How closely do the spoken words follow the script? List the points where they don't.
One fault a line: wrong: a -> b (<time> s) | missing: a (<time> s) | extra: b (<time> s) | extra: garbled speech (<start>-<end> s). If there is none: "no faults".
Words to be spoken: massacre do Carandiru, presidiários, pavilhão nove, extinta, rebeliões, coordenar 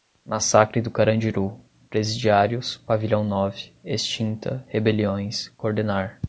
no faults